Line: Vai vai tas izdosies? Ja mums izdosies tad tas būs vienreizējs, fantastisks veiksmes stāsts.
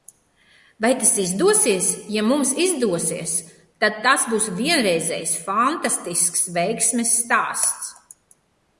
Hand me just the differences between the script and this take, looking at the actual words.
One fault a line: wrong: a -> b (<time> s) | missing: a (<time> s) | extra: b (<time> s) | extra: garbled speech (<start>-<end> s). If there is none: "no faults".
missing: vai (0.9 s)